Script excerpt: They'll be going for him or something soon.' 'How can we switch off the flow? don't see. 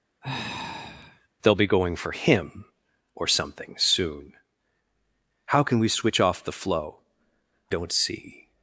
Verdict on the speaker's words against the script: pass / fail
pass